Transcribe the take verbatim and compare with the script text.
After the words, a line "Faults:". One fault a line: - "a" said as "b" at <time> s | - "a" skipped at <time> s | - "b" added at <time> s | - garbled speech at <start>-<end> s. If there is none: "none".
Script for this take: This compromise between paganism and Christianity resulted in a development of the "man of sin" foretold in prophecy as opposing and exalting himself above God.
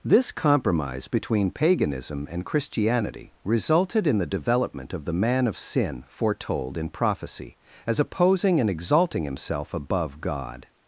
This compromise between paganism and Christianity resulted in the development of the "man of sin" foretold in prophecy as opposing and exalting himself above God.
Faults:
- "a" said as "the" at 4.2 s